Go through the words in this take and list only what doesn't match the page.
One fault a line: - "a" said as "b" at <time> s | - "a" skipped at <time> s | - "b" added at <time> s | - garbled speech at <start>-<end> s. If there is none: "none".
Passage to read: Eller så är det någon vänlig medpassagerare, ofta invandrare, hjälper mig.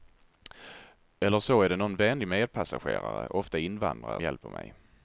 none